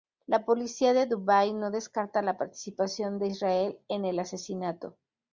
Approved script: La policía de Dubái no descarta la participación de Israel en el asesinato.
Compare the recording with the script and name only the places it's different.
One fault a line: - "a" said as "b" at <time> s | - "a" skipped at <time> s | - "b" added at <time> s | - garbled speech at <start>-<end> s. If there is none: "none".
none